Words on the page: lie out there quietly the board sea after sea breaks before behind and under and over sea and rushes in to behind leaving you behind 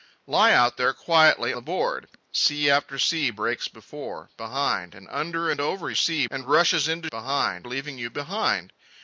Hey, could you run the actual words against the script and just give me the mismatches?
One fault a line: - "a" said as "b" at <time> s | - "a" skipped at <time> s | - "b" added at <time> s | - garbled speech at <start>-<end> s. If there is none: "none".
none